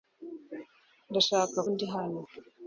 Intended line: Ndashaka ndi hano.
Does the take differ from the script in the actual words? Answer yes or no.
no